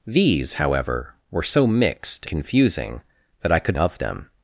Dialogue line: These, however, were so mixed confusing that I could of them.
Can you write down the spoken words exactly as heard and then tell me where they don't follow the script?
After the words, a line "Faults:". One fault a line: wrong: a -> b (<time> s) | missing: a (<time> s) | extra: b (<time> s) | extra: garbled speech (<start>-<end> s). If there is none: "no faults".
These, however, were so mixed confusing that I could of them.
Faults:
no faults